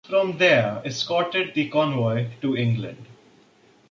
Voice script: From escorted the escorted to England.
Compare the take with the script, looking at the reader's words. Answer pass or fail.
fail